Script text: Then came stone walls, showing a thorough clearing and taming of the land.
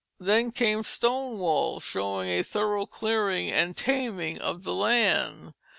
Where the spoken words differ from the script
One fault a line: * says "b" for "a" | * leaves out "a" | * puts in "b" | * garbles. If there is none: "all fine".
all fine